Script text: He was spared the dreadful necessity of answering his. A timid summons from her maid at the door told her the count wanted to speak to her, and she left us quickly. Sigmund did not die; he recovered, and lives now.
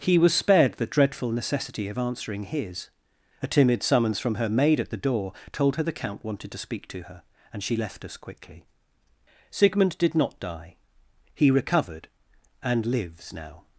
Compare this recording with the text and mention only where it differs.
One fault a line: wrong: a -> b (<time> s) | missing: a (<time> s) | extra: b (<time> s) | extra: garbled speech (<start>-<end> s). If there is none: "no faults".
no faults